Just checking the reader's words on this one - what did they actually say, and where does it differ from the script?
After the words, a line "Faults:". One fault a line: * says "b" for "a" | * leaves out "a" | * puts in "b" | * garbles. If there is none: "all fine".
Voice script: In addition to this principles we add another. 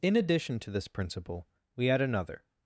In addition to this principle we add another.
Faults:
* says "principle" for "principles"